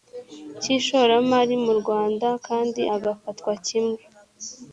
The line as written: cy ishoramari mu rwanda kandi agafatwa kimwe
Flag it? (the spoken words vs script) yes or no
no